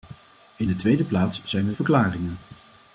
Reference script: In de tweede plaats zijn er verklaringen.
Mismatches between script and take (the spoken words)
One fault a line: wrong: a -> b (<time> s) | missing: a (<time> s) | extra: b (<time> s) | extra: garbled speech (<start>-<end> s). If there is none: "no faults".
no faults